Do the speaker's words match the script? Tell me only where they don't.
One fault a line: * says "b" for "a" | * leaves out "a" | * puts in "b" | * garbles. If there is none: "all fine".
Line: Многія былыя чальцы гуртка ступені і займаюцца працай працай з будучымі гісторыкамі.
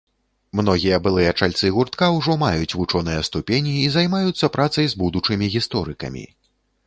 * puts in "ўжо маюць вучоныя"
* leaves out "працай"